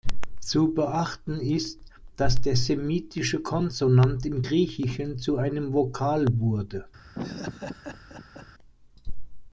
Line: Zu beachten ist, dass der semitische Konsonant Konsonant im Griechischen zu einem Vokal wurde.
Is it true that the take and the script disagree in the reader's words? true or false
true